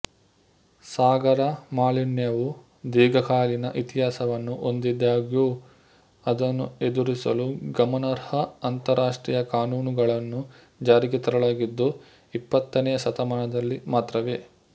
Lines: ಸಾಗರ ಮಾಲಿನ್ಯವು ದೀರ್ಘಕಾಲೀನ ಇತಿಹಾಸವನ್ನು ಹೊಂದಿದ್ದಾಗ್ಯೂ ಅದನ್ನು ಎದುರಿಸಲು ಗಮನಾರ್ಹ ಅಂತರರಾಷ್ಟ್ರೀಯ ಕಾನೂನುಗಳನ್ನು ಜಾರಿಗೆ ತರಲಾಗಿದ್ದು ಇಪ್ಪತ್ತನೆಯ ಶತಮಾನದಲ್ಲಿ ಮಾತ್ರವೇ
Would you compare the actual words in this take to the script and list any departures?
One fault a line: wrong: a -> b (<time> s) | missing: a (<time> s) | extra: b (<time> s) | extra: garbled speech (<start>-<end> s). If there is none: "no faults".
no faults